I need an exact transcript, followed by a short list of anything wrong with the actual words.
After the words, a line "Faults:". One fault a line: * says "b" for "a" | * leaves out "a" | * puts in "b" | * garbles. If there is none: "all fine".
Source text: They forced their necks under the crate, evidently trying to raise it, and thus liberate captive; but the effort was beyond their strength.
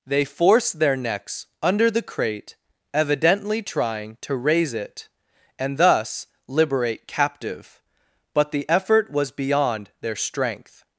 They forced their necks under the crate, evidently trying to raise it, and thus liberate captive; but the effort was beyond their strength.
Faults:
all fine